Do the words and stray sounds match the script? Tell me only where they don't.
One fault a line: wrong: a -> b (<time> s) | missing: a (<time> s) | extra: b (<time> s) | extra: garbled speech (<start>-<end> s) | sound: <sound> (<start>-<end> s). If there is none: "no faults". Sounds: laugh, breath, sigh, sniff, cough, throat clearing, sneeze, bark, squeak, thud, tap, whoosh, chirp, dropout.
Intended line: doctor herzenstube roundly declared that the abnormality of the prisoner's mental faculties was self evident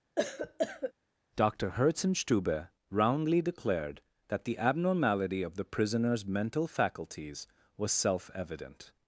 sound: cough (0.2-0.9 s)